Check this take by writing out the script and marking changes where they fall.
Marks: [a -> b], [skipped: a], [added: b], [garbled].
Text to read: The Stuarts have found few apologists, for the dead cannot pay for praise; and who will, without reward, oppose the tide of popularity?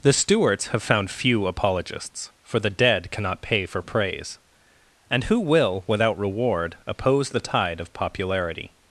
The Stuarts have found few apologists, for the dead cannot pay for praise; and who will, without reward, oppose the tide of popularity?